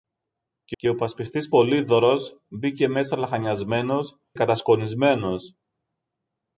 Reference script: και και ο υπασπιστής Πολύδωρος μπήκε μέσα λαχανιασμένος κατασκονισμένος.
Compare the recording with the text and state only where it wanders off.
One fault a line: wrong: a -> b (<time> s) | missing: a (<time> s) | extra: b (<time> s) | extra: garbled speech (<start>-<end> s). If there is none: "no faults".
no faults